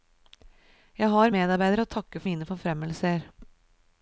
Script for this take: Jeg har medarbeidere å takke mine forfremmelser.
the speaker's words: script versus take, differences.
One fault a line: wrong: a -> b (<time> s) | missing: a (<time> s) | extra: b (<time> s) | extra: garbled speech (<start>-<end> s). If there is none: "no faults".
no faults